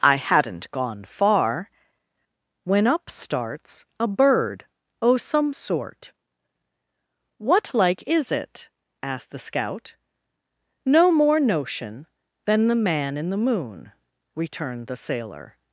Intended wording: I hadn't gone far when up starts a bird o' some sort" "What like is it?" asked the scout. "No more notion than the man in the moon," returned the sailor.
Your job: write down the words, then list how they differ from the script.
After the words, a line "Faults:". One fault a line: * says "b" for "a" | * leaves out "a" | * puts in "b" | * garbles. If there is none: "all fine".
I hadn't gone far when up starts a bird o' some sort" "What like is it?" asked the scout. "No more notion than the man in the moon," returned the sailor.
Faults:
all fine